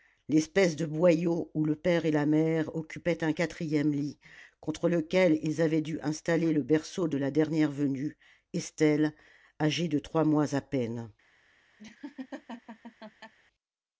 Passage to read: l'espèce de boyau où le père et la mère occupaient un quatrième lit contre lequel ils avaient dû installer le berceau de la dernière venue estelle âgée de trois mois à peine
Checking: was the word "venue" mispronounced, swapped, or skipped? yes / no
no